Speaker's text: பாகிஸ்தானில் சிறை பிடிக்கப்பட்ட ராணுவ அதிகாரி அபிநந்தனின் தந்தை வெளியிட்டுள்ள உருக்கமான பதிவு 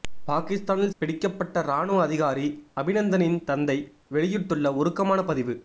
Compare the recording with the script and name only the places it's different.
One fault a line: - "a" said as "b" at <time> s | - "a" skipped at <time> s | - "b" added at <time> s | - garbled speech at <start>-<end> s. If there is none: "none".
- "சிறை" skipped at 1.0 s